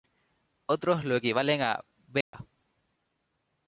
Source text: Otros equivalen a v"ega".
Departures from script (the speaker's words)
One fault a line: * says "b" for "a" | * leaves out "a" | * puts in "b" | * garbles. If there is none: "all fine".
* puts in "lo"